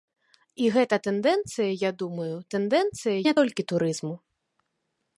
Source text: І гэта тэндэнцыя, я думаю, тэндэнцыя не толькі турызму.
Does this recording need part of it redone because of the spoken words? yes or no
no